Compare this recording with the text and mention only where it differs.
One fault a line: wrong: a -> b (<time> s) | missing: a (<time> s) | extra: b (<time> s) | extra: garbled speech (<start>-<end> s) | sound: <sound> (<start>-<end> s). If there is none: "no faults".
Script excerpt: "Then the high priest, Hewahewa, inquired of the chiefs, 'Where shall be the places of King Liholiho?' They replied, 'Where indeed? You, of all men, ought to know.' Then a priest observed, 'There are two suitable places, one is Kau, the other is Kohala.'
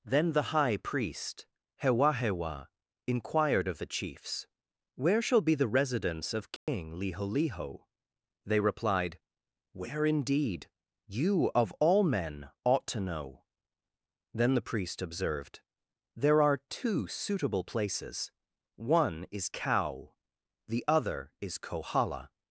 wrong: places -> residence (5.7 s)
sound: dropout (6.6-6.7 s)
wrong: a -> the (14.5 s)